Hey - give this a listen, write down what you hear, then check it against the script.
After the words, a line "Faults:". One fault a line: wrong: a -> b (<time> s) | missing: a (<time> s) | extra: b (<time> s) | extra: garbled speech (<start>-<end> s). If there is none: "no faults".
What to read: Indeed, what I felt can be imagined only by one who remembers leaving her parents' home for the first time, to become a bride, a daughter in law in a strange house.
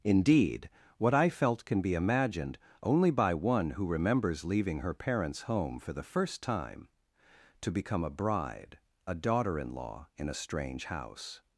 Indeed, what I felt can be imagined only by one who remembers leaving her parents' home for the first time, to become a bride, a daughter in law in a strange house.
Faults:
no faults